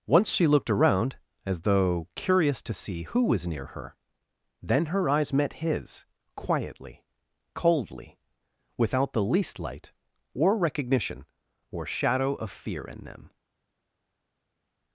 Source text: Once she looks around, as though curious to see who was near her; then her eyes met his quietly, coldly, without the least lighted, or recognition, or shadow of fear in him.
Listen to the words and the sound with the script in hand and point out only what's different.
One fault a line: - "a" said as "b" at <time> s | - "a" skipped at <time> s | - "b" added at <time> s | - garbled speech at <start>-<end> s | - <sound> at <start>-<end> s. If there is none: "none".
- "looks" said as "looked" at 0.5 s
- "lighted" said as "light" at 9.6 s
- "him" said as "them" at 13.0 s